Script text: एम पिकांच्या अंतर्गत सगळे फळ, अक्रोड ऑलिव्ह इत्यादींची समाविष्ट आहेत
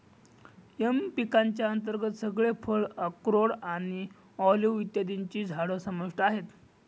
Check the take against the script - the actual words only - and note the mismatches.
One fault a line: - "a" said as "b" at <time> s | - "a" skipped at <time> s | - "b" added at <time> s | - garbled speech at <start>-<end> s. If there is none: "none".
- "आणि" added at 3.5 s
- "झाडं" added at 5.5 s